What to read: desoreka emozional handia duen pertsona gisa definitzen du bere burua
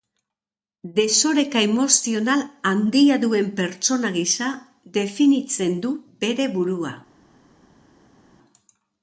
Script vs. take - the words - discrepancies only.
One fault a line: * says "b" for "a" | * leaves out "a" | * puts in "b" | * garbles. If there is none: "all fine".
all fine